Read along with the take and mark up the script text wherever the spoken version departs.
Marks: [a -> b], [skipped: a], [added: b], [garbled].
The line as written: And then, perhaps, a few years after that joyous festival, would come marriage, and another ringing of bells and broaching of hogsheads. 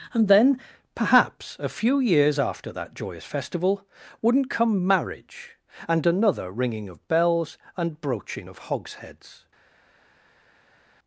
And then, perhaps, a few years after that joyous festival, [would -> wouldn't] come marriage, and another ringing of bells and broaching of hogsheads.